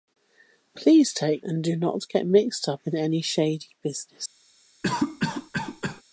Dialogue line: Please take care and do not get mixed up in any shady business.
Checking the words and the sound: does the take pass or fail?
fail